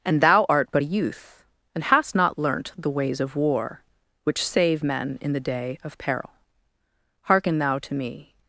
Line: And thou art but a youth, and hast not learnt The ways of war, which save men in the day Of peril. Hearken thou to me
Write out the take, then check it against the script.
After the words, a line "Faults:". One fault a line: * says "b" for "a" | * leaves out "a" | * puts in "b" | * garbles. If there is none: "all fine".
And thou art but a youth, and hast not learnt The ways of war, which save men in the day Of peril. Hearken thou to me
Faults:
all fine